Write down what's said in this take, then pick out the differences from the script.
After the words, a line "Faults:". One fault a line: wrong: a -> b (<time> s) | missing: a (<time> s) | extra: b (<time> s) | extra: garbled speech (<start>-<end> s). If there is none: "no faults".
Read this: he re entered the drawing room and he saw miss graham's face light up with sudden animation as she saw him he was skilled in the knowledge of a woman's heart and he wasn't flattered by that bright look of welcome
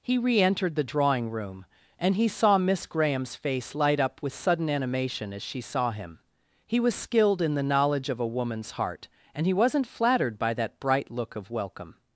he re entered the drawing room and he saw miss graham's face light up with sudden animation as she saw him he was skilled in the knowledge of a woman's heart and he wasn't flattered by that bright look of welcome
Faults:
no faults